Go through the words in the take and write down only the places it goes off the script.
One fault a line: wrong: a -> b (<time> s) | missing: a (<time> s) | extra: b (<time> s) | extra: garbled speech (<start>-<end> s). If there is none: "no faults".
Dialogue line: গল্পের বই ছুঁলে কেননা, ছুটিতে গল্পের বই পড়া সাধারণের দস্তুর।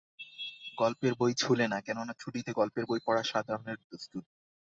extra: না (1.7 s)